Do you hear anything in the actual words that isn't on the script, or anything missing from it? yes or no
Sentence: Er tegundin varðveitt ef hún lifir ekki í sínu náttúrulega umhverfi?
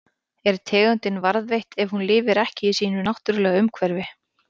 no